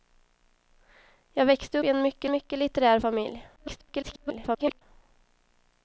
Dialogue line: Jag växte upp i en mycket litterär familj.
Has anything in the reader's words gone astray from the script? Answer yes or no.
yes